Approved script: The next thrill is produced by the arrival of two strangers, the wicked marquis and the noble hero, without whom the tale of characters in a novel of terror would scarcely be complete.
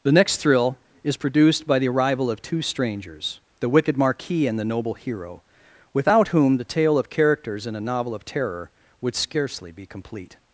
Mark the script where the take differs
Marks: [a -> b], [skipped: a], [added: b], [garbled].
The next thrill is produced by the arrival of two strangers, the wicked marquis and the noble hero, without whom the tale of characters in a novel of terror would scarcely be complete.